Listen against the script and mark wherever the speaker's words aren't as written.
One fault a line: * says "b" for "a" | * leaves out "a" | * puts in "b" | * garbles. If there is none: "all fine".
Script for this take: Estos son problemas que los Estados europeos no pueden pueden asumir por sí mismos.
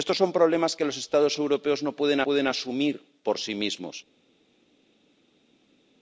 all fine